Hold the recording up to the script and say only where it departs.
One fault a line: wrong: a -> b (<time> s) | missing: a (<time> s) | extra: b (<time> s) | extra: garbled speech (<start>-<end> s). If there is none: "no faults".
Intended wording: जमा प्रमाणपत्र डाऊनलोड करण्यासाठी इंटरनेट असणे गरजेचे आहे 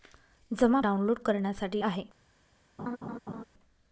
missing: प्रमाणपत्र (0.8 s)
missing: इंटरनेट असणे गरजेचे (1.8 s)